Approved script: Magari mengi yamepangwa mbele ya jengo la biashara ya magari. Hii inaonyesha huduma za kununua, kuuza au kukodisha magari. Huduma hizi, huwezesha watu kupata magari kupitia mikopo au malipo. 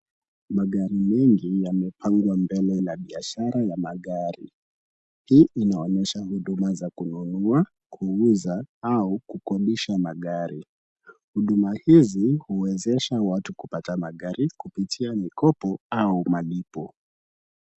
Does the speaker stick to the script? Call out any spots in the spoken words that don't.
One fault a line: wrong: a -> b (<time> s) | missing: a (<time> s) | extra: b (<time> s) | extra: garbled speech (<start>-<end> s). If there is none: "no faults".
missing: ya jengo (2.8 s)